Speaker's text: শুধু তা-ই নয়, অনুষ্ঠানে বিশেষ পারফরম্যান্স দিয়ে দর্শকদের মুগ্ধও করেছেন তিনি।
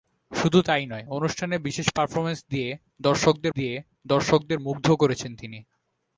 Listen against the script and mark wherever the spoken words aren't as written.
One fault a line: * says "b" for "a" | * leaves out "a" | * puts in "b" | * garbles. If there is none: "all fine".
* puts in "দিয়ে দর্শকদের"